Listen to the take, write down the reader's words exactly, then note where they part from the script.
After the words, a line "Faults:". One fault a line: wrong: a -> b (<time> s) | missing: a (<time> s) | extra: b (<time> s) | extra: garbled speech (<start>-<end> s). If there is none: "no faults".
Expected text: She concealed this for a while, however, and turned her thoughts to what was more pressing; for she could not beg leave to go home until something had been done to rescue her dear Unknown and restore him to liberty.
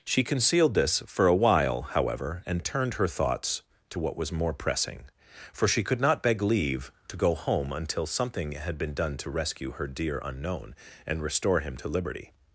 She concealed this for a while, however, and turned her thoughts to what was more pressing; for she could not beg leave to go home until something had been done to rescue her dear Unknown and restore him to liberty.
Faults:
no faults